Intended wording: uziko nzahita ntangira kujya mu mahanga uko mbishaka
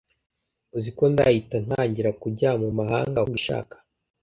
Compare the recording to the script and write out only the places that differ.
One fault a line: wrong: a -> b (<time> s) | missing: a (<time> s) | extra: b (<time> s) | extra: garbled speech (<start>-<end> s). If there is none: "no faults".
missing: uko (3.2 s)